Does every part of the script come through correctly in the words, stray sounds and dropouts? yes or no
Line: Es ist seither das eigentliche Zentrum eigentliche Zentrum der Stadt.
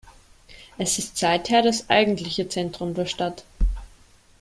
no